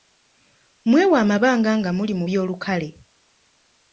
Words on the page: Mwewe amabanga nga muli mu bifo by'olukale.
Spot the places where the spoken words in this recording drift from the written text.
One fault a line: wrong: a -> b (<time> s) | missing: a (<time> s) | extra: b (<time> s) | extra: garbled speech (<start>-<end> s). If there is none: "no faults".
missing: bifo (2.2 s)